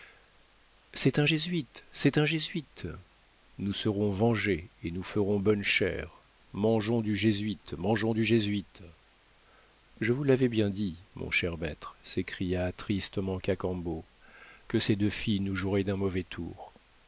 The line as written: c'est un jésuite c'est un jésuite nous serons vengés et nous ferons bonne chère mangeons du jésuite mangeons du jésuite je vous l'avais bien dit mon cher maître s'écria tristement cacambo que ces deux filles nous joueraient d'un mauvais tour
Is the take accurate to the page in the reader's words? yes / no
yes